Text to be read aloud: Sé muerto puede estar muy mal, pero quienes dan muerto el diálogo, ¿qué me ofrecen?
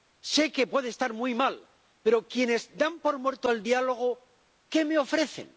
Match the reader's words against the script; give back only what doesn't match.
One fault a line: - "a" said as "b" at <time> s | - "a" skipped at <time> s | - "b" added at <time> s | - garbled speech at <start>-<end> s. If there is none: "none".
- "muerto" said as "que" at 0.5 s
- "por" added at 3.0 s